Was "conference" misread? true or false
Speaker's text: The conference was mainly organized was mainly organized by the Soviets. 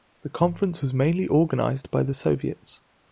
false